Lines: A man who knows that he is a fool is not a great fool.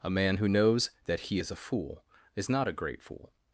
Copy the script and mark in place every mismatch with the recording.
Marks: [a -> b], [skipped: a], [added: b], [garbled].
A man who knows that he is a fool is not a great fool.